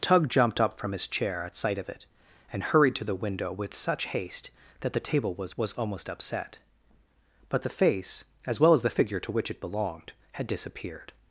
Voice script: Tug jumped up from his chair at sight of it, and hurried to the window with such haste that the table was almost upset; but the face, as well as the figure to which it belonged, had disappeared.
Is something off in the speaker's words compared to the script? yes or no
yes